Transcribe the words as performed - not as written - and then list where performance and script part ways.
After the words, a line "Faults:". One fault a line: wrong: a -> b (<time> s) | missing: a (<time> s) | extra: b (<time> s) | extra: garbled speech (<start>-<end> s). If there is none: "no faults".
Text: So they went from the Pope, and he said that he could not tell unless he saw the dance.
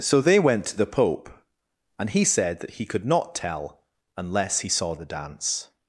So they went to the Pope, and he said that he could not tell unless he saw the dance.
Faults:
wrong: from -> to (0.7 s)